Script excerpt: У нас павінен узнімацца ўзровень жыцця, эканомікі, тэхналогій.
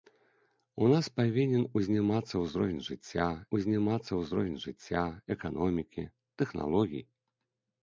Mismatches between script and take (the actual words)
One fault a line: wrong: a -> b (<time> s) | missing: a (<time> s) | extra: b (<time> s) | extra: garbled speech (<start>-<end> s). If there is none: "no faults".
extra: узнімацца ўзровень жыцця (3.6 s)